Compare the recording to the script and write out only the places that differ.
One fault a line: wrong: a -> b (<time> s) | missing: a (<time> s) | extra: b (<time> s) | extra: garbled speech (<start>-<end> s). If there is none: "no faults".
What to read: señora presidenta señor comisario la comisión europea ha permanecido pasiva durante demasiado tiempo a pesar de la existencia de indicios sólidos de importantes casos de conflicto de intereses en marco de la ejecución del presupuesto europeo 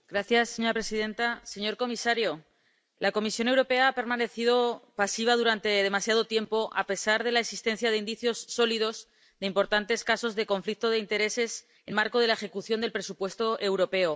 no faults